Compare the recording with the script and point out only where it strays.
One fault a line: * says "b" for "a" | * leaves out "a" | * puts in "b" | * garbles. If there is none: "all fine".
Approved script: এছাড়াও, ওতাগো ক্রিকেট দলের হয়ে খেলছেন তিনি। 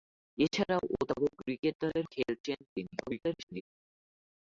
* leaves out "হয়ে"
* garbles